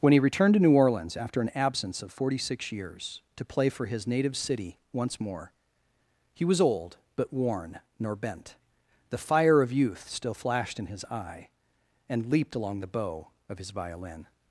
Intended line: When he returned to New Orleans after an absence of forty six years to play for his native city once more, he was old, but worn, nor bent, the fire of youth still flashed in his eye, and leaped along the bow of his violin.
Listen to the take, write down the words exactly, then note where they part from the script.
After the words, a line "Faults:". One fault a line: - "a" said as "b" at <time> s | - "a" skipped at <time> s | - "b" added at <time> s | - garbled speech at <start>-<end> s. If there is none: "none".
When he returned to New Orleans after an absence of forty six years to play for his native city once more, he was old, but worn, nor bent, the fire of youth still flashed in his eye, and leaped along the bow of his violin.
Faults:
none